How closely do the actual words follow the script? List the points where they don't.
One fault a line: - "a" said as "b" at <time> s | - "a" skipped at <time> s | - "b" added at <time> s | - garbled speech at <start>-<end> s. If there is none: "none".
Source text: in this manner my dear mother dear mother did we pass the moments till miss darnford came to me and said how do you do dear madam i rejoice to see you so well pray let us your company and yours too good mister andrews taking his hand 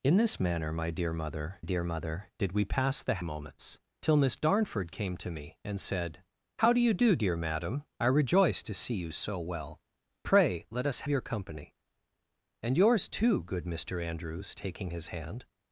none